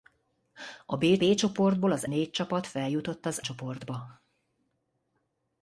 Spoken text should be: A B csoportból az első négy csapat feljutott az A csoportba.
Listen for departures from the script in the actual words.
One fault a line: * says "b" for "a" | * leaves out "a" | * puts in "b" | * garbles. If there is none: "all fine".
* puts in "B"
* leaves out "első"
* leaves out "A"